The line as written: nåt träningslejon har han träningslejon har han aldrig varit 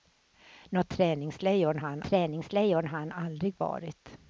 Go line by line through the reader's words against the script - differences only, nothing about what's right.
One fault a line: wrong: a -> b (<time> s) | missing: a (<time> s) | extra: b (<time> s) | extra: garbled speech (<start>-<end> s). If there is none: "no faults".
no faults